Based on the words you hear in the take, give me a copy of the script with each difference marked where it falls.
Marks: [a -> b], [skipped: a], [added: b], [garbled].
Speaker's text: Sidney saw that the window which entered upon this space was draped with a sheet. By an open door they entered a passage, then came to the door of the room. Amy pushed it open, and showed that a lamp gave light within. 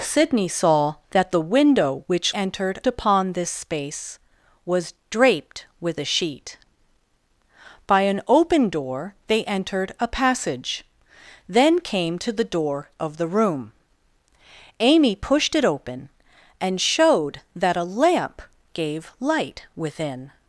Sidney saw that the window which entered upon this space was draped with a sheet. By an open door they entered a passage, then came to the door of the room. Amy pushed it open, and showed that a lamp gave light within.